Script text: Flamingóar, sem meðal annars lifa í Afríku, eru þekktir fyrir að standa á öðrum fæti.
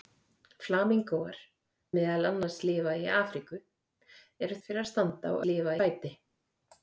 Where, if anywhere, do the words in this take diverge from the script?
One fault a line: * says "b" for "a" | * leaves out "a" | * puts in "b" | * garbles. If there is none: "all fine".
* leaves out "sem"
* leaves out "þekktir"
* says "lifa" for "öðrum"